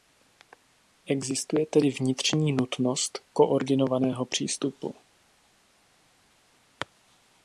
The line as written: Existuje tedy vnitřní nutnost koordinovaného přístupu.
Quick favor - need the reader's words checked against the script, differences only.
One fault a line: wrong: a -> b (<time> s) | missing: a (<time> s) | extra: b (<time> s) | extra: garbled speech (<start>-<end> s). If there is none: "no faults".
no faults